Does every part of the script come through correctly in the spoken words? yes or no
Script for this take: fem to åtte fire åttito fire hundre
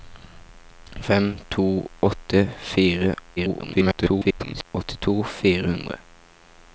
no